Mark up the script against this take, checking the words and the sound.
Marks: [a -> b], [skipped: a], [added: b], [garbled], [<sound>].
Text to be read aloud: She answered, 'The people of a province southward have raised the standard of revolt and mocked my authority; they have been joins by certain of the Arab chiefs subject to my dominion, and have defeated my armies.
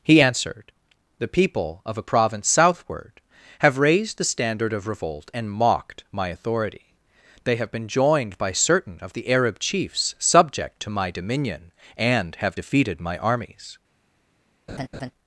[She -> He] answered, 'The people of a province southward have raised the standard of revolt and mocked my authority; they have been [joins -> joined] by certain of the Arab chiefs subject to my dominion, and have defeated my armies. [laugh]